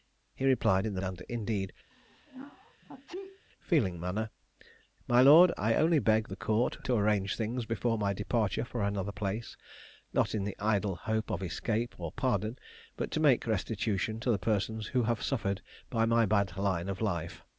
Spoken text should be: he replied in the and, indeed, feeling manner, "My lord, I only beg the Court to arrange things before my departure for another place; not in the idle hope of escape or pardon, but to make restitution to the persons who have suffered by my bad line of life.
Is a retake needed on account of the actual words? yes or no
no